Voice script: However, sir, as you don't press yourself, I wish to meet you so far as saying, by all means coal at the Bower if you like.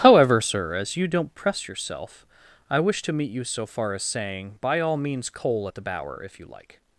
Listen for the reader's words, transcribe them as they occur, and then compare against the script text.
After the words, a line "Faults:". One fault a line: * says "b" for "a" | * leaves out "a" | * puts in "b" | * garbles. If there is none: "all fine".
However, sir, as you don't press yourself, I wish to meet you so far as saying, by all means coal at the Bower if you like.
Faults:
all fine